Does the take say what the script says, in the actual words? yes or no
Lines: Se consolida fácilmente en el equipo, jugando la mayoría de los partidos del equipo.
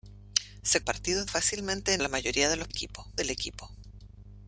no